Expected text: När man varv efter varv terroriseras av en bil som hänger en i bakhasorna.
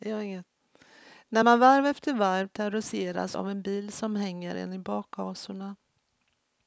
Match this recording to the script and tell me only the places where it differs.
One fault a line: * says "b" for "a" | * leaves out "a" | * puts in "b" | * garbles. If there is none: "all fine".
all fine